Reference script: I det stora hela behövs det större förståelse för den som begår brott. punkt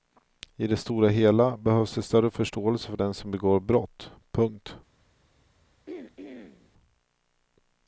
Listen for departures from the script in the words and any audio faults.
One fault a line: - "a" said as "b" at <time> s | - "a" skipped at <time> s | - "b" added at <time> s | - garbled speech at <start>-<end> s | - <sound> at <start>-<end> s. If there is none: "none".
- throat clearing at 5.9-6.7 s